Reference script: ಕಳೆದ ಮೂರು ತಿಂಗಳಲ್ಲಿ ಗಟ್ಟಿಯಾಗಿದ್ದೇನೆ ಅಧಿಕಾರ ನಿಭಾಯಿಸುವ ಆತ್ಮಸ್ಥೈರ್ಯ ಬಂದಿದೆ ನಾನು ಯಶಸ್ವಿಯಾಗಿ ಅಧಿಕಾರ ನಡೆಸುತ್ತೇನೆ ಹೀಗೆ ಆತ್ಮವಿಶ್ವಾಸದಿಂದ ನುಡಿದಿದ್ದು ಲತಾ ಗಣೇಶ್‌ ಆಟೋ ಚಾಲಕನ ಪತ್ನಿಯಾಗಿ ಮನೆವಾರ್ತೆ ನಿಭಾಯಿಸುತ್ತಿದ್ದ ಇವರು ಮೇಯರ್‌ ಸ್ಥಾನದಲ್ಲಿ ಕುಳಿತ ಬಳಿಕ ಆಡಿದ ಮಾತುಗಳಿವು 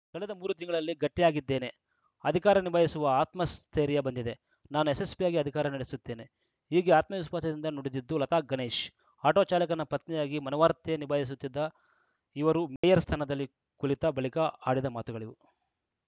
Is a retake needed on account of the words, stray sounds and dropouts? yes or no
yes